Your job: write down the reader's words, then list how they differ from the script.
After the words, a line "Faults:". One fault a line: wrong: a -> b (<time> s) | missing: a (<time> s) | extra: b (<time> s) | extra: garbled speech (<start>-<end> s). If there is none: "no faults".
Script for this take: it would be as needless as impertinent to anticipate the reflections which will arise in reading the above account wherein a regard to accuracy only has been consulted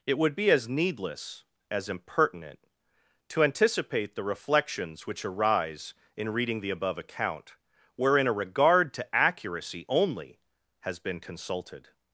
it would be as needless as impertinent to anticipate the reflections which arise in reading the above account wherein a regard to accuracy only has been consulted
Faults:
missing: will (5.2 s)